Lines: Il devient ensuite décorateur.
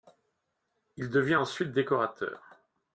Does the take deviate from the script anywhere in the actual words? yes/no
no